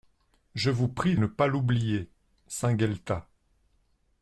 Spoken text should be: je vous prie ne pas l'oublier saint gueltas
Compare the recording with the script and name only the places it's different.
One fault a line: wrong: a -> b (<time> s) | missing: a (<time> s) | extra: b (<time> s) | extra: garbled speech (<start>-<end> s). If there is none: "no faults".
no faults